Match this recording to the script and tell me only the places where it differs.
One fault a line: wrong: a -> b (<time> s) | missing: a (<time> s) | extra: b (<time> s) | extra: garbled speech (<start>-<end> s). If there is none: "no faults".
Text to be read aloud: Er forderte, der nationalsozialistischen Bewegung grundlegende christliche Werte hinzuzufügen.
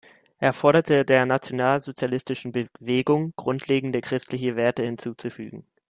no faults